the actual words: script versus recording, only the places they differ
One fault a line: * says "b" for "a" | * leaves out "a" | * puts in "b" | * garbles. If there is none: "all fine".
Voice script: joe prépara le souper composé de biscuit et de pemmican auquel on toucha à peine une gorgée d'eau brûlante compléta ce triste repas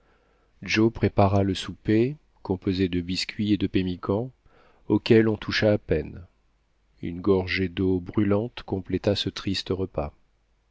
all fine